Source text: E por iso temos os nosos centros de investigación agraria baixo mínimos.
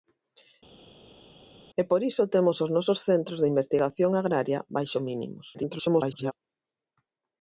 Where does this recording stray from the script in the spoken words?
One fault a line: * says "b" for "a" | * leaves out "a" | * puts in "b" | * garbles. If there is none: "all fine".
* garbles